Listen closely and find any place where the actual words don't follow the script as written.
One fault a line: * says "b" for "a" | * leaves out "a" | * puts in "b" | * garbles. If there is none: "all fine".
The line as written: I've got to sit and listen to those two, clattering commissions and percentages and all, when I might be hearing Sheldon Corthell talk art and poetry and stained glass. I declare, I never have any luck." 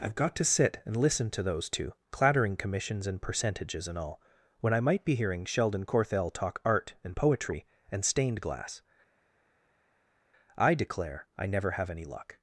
all fine